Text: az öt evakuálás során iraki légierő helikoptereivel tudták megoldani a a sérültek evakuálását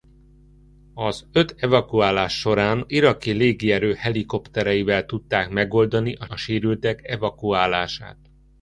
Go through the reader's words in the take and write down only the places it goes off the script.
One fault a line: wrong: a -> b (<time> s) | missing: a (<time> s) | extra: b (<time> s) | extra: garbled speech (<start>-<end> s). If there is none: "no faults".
no faults